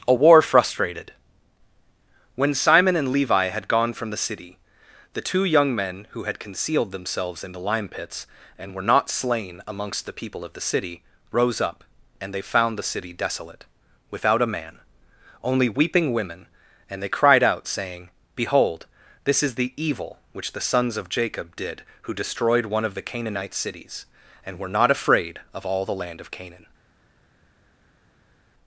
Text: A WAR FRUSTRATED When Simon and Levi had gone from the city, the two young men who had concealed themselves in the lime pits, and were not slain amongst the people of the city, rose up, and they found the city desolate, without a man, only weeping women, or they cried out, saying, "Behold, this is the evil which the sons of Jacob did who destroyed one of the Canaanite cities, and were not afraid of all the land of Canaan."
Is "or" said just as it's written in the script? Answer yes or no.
no